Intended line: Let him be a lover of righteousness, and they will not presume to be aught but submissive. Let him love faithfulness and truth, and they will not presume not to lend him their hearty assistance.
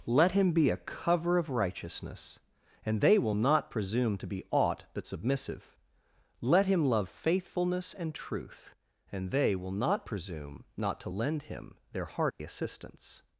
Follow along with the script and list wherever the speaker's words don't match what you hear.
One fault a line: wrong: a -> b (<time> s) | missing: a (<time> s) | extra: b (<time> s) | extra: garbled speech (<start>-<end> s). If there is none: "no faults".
wrong: lover -> cover (0.8 s)